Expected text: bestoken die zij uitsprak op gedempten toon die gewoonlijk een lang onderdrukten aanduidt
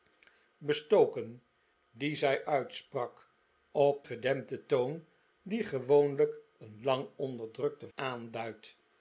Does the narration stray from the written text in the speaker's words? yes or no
no